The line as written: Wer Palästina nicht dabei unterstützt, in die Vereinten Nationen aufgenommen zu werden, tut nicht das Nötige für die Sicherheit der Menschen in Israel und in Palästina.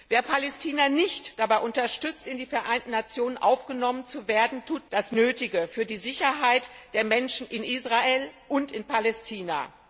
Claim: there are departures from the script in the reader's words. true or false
true